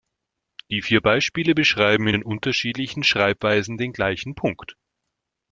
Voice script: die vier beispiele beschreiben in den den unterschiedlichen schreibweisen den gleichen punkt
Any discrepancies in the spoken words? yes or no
yes